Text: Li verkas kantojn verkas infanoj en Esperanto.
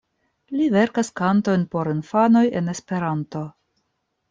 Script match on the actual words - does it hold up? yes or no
no